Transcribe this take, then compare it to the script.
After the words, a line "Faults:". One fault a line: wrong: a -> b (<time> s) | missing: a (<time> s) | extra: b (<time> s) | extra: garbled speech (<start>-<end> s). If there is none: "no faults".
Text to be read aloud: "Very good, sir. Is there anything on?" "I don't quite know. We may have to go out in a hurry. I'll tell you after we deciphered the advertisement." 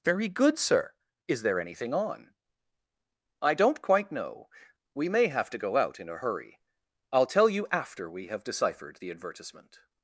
"Very good, sir. Is there anything on?" "I don't quite know. We may have to go out in a hurry. I'll tell you after we have deciphered the advertisement."
Faults:
extra: have (8.3 s)